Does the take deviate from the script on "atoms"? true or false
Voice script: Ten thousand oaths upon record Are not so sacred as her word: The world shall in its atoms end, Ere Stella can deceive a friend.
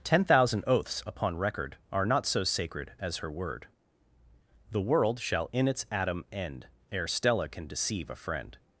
true